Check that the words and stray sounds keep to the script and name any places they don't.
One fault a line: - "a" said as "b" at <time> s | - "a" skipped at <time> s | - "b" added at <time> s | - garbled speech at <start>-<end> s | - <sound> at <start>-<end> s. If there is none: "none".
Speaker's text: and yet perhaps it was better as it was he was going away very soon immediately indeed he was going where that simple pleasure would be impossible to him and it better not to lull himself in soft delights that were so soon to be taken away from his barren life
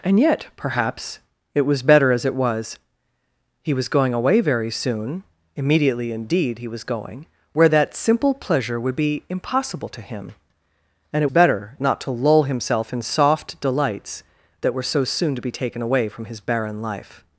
none